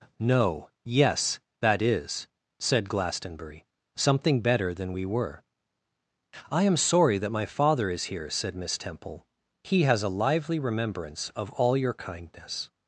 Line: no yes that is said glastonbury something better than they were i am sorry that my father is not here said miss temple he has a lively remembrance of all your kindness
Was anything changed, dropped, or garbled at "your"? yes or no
no